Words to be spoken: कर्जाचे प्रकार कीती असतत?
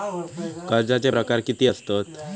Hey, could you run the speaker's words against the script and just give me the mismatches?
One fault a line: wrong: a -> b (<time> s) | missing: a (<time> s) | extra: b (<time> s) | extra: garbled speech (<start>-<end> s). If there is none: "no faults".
no faults